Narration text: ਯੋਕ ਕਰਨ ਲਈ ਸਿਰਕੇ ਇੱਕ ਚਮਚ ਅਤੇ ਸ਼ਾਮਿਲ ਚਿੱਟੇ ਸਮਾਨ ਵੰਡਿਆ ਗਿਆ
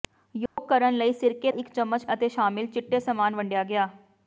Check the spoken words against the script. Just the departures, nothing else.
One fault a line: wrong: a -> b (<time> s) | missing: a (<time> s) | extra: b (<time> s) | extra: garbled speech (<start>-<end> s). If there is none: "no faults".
no faults